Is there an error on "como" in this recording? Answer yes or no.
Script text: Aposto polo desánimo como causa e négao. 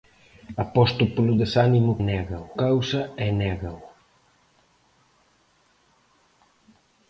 yes